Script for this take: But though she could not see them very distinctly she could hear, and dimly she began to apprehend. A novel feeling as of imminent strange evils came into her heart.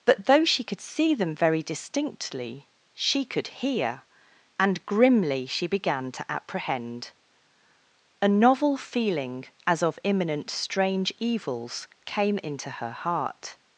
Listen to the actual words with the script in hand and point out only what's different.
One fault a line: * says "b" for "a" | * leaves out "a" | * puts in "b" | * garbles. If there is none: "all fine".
* leaves out "not"
* says "grimly" for "dimly"